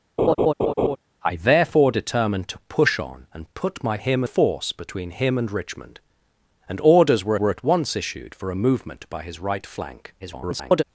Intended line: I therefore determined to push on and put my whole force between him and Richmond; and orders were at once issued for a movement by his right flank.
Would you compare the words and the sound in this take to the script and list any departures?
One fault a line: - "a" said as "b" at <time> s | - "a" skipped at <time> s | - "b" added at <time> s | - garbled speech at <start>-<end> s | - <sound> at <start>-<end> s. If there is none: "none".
- laugh at 0.2-1.0 s
- "whole" said as "him" at 4.0 s
- "were" added at 7.4 s
- garbled speech at 10.2-10.8 s